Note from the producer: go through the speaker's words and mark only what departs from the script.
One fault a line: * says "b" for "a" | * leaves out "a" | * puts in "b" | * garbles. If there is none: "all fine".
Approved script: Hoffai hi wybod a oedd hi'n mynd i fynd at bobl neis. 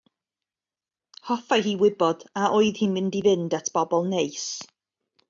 all fine